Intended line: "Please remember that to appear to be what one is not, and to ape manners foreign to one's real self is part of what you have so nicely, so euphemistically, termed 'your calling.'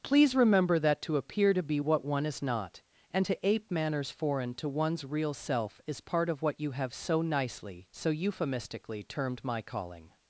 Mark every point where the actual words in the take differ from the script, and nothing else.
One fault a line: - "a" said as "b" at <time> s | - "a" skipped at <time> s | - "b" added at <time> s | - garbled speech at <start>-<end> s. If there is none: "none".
- "your" said as "my" at 9.4 s